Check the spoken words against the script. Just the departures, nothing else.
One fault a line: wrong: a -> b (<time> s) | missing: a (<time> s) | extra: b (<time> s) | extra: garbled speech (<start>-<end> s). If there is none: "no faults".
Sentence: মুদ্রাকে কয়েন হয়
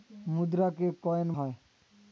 no faults